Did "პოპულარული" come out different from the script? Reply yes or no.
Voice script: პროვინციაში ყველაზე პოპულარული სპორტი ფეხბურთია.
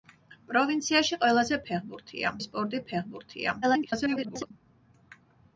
yes